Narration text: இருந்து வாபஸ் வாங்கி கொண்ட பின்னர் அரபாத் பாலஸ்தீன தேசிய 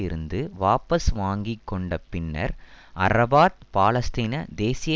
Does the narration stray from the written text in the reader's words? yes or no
no